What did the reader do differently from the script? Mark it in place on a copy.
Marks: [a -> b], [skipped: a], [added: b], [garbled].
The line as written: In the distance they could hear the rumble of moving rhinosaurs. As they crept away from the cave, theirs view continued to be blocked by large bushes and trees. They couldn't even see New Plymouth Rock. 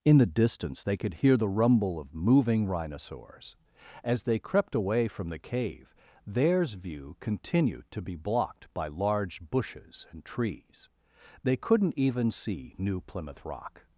In the distance they could hear the rumble of moving rhinosaurs. As they crept away from the cave, theirs view continued to be blocked by large bushes and trees. They couldn't even see New Plymouth Rock.